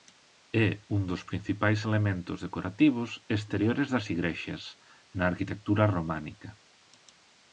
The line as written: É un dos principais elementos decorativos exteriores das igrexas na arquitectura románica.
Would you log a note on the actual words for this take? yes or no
no